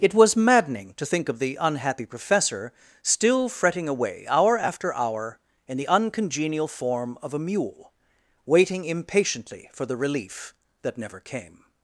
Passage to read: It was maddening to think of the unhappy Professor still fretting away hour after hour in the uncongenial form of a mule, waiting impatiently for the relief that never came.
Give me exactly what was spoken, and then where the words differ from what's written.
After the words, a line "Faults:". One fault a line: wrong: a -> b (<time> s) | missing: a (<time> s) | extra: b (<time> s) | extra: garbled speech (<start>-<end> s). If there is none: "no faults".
It was maddening to think of the unhappy Professor still fretting away hour after hour in the uncongenial form of a mule, waiting impatiently for the relief that never came.
Faults:
no faults